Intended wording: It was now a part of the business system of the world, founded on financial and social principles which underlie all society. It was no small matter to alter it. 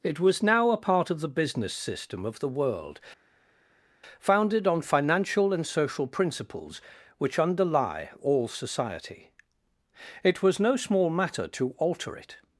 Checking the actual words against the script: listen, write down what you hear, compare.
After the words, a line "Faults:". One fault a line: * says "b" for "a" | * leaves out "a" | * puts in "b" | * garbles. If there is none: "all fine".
It was now a part of the business system of the world, founded on financial and social principles which underlie all society. It was no small matter to alter it.
Faults:
all fine